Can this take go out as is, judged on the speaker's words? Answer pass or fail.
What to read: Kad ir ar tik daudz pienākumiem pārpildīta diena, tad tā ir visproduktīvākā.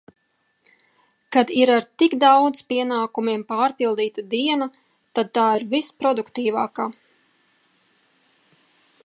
pass